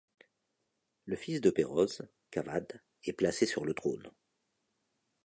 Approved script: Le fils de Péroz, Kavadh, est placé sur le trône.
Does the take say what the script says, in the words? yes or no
yes